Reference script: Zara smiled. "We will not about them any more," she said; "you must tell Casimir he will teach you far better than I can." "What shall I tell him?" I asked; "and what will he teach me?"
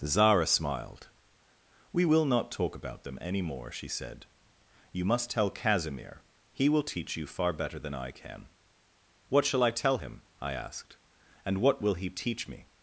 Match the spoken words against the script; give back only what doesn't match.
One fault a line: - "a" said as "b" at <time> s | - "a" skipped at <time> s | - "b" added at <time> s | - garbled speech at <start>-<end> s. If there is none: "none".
- "talk" added at 2.5 s